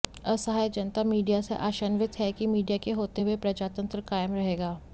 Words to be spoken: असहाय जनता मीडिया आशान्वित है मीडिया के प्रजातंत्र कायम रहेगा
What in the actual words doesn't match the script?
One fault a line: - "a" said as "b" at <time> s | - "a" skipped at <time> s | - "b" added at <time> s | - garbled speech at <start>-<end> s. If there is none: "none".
- "से" added at 1.4 s
- "कि" added at 2.3 s
- "होते हुए" added at 2.9 s